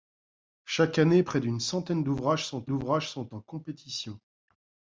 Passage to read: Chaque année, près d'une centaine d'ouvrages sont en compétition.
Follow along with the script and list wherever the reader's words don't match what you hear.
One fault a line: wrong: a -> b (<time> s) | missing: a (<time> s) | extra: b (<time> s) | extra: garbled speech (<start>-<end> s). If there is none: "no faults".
extra: d'ouvrages sont (2.7 s)